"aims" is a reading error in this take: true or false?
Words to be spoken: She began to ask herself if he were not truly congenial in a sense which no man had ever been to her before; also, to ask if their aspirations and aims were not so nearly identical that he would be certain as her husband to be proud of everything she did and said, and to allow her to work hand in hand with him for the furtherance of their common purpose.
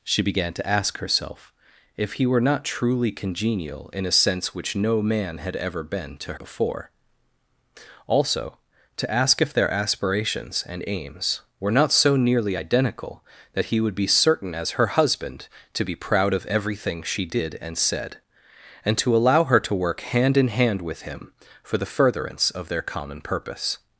false